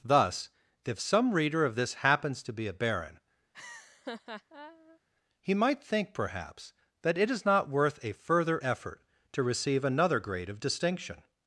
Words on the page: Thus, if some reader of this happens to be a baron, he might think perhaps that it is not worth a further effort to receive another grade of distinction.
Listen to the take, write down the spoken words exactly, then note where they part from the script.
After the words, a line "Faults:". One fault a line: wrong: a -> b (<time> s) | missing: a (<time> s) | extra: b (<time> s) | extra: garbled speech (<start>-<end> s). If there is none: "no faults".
Thus, if some reader of this happens to be a baron, he might think perhaps that it is not worth a further effort to receive another grade of distinction.
Faults:
no faults